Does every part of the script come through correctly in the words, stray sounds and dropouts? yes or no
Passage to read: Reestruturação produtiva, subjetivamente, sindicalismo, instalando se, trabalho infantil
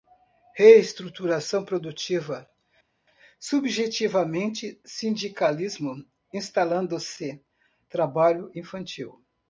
yes